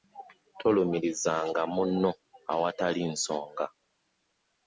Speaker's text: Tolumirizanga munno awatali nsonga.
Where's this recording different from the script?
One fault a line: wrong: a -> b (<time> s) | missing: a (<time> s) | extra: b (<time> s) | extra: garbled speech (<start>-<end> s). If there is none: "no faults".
no faults